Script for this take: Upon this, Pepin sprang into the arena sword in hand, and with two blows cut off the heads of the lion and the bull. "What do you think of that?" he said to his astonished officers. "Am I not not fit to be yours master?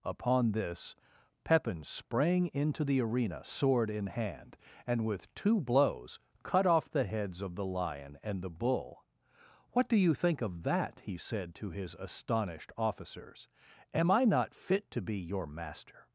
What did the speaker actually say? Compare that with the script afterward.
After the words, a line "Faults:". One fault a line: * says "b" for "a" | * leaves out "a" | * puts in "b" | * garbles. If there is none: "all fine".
Upon this, Pepin sprang into the arena sword in hand, and with two blows cut off the heads of the lion and the bull. "What do you think of that?" he said to his astonished officers. "Am I not fit to be your master?
Faults:
* leaves out "not"
* says "your" for "yours"